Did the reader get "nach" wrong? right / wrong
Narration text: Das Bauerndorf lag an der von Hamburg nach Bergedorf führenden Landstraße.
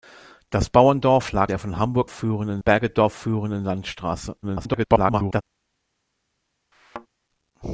wrong